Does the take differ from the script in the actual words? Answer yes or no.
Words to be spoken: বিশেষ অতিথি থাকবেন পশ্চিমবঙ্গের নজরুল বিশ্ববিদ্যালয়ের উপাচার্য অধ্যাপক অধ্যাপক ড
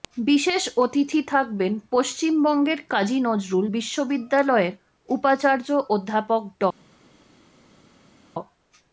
yes